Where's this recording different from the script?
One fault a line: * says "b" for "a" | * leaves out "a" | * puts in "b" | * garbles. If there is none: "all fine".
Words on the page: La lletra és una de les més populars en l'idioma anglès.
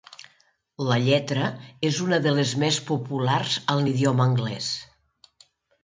all fine